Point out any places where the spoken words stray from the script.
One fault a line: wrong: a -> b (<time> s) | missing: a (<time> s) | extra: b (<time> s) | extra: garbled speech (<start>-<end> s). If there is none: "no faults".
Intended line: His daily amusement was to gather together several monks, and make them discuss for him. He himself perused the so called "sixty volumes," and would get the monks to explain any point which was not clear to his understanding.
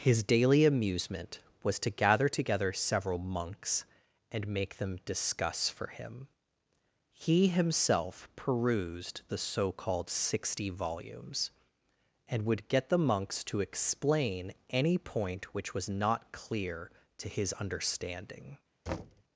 no faults